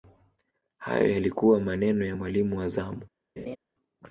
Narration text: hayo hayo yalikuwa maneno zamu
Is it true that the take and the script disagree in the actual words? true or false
true